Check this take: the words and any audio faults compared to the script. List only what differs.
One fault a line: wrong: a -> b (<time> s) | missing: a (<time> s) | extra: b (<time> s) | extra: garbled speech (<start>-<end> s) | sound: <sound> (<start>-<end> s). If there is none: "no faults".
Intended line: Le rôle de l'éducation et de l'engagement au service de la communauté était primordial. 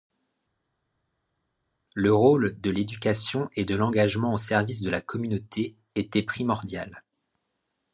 no faults